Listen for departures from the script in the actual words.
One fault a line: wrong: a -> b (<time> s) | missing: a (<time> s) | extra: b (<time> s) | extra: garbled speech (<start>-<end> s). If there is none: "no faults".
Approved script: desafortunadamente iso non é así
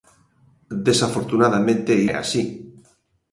missing: iso non (1.9 s)